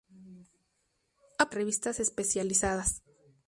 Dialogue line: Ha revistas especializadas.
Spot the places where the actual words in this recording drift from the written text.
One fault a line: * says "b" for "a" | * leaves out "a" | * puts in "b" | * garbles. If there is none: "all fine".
all fine